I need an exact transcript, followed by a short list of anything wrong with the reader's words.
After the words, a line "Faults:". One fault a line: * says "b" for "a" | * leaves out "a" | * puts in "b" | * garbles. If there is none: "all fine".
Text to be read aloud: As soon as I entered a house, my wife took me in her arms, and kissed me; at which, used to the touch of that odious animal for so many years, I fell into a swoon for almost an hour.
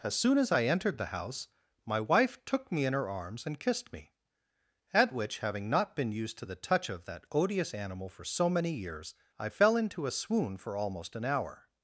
As soon as I entered the house, my wife took me in her arms, and kissed me; at which, having not been used to the touch of that odious animal for so many years, I fell into a swoon for almost an hour.
Faults:
* says "the" for "a"
* puts in "having not been"